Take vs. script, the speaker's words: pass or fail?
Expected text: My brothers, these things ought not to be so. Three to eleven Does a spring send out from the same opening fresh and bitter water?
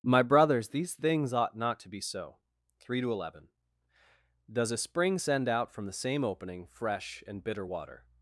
pass